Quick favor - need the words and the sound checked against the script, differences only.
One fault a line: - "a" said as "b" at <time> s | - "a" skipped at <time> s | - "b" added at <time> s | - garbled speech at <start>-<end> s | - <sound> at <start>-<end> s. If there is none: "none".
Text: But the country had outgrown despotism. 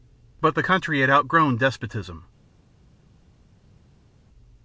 none